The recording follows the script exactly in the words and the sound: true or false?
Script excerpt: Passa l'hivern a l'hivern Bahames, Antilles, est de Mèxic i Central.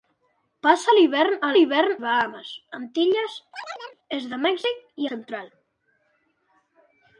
false